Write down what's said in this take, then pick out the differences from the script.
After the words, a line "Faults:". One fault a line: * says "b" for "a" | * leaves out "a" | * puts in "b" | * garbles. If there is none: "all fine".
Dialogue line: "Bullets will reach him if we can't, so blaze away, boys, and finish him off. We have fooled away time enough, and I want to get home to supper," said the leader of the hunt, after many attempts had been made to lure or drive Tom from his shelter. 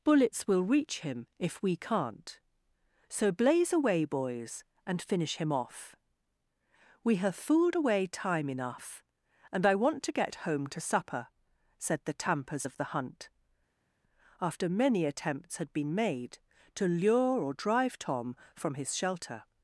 "Bullets will reach him if we can't, so blaze away, boys, and finish him off. We have fooled away time enough, and I want to get home to supper," said the tampers of the hunt, after many attempts had been made to lure or drive Tom from his shelter.
Faults:
* says "tampers" for "leader"